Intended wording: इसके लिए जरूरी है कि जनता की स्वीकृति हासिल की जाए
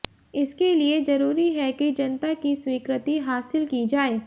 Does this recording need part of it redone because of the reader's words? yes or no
no